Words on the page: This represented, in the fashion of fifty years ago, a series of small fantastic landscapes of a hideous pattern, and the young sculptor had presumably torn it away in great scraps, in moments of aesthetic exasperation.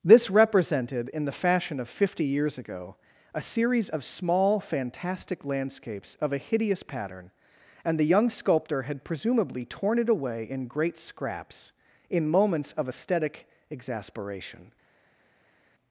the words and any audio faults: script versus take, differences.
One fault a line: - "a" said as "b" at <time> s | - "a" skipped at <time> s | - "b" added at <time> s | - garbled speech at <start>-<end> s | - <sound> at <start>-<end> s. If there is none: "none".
none